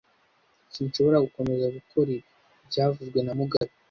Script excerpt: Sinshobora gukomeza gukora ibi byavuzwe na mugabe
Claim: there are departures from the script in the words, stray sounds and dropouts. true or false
true